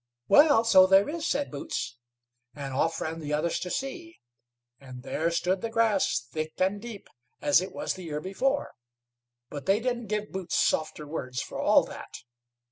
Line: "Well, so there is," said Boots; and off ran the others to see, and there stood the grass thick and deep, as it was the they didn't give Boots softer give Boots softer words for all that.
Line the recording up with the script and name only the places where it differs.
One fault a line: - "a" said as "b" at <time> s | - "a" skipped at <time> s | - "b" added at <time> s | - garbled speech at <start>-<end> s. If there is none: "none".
- "they didn't give Boots softer" said as "year before but they didn't" at 8.1 s